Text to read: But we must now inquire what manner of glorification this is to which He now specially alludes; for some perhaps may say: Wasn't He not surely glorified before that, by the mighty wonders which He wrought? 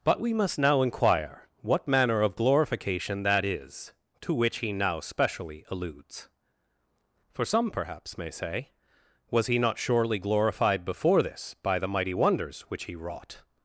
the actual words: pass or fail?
fail